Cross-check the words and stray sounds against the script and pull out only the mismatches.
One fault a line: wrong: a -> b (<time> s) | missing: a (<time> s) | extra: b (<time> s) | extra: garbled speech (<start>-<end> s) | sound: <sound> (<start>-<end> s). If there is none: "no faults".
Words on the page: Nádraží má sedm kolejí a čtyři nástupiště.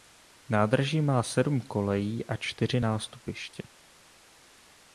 no faults